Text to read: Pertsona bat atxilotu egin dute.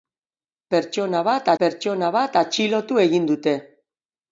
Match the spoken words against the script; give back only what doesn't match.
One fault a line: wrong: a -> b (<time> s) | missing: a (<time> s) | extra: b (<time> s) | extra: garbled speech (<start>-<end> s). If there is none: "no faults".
extra: pertsona bat (1.6 s)